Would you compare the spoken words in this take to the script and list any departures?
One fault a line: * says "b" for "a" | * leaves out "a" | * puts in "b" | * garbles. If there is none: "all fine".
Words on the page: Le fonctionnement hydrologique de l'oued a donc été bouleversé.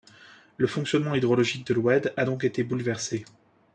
all fine